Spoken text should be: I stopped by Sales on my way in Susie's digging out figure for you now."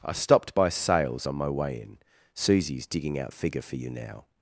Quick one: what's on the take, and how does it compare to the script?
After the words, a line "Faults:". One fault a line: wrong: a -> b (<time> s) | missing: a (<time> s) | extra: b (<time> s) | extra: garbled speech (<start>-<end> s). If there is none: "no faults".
I stopped by Sales on my way in Susie's digging out figure for you now."
Faults:
no faults